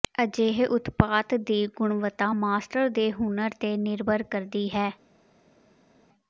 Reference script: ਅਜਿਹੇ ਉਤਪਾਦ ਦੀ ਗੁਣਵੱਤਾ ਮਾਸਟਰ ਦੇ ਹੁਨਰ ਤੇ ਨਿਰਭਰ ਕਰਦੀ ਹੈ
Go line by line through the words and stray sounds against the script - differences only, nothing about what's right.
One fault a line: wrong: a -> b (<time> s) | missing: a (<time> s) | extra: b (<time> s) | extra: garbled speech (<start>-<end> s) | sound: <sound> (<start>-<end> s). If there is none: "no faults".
no faults